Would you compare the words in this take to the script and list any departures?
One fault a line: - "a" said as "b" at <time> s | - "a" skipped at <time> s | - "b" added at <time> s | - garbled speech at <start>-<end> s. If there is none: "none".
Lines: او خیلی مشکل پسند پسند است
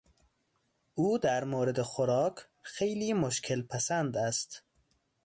- "در مورد خوراک" added at 1.2 s
- "پسند" skipped at 4.2 s